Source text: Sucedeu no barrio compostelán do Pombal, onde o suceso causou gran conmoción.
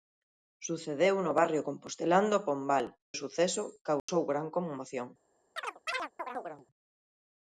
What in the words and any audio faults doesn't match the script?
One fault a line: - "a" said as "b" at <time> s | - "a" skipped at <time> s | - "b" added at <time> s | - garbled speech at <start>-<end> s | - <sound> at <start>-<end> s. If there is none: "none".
- "onde" skipped at 2.9 s
- dropout at 4.0-4.1 s
- chirp at 5.6-6.7 s